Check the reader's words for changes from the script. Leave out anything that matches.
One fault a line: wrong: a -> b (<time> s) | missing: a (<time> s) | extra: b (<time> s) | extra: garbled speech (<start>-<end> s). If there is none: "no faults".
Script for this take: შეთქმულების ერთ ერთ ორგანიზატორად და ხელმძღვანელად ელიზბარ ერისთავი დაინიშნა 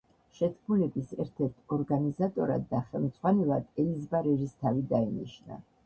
no faults